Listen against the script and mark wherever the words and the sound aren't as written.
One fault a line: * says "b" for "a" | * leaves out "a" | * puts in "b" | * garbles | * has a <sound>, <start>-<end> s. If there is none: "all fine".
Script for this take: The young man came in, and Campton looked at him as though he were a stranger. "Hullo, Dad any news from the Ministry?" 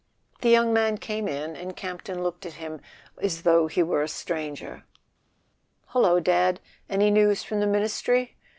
all fine